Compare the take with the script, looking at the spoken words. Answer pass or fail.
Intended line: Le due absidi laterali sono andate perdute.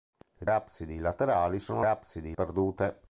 fail